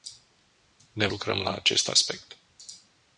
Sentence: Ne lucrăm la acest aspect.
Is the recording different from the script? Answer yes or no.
no